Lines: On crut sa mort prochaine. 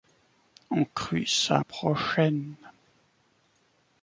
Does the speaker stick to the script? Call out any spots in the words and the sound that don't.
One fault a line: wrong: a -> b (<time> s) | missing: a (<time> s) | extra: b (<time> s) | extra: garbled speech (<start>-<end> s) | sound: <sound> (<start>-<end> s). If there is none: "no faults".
missing: mort (1.6 s)